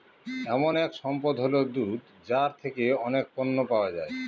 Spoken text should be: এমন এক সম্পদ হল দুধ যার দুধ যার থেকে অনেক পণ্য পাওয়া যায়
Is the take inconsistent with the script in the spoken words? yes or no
yes